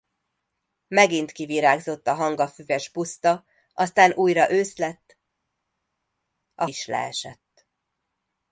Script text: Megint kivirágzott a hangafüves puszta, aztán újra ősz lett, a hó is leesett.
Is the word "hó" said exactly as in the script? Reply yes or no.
no